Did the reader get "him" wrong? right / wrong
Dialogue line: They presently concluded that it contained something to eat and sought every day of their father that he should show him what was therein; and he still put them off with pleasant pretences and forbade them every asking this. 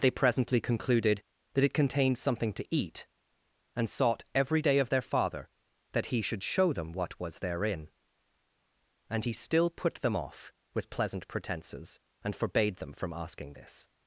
wrong